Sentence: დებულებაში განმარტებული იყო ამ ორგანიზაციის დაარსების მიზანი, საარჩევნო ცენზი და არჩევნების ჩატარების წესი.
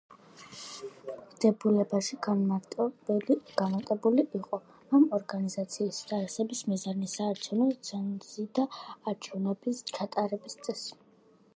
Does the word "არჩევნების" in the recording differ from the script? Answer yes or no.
no